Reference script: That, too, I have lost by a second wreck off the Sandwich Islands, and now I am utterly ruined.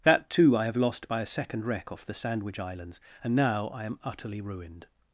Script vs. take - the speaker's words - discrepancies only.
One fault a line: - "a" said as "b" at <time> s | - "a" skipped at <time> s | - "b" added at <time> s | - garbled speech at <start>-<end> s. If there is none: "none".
none